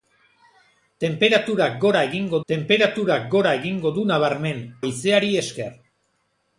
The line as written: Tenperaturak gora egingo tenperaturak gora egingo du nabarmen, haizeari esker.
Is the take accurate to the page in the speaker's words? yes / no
yes